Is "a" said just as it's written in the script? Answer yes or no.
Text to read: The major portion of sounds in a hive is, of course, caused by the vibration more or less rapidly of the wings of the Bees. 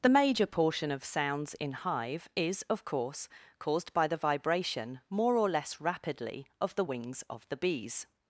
no